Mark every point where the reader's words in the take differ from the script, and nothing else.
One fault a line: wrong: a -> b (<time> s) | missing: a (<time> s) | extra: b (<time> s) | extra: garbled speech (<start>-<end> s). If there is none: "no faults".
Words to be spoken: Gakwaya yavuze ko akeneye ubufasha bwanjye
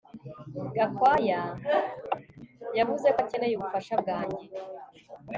no faults